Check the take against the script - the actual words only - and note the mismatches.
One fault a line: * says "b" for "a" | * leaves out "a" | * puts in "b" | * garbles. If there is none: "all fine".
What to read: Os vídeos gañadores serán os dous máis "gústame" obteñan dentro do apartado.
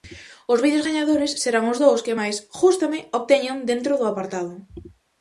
* puts in "que"